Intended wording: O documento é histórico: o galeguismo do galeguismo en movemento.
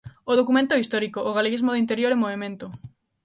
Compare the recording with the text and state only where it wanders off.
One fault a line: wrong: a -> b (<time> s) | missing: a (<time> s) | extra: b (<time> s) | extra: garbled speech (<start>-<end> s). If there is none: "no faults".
wrong: galeguismo -> interior (1.8 s)